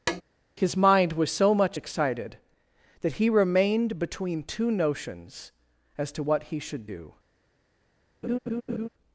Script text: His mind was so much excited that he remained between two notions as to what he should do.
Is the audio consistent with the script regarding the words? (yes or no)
yes